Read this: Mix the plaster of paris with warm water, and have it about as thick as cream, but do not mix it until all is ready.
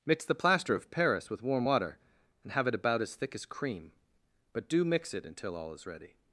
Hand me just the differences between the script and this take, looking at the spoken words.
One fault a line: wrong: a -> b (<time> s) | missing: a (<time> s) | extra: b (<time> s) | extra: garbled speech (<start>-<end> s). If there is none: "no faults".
missing: not (4.8 s)